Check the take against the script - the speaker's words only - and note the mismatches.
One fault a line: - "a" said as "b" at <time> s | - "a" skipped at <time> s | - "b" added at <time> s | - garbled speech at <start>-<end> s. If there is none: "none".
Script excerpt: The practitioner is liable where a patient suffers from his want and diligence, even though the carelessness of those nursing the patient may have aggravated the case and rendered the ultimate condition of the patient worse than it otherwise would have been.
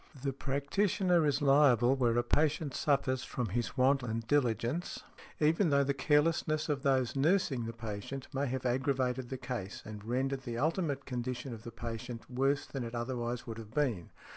none